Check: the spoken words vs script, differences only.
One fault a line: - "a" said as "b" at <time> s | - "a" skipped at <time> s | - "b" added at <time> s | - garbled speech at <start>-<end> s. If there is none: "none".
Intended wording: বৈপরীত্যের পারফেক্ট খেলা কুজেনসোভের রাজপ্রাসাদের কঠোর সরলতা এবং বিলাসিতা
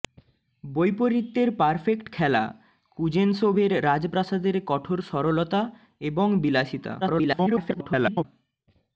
- garbled speech at 7.0-8.2 s